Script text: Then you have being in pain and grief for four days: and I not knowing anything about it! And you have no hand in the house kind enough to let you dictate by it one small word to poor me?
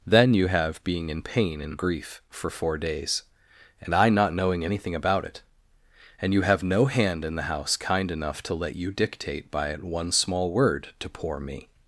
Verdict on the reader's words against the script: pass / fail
pass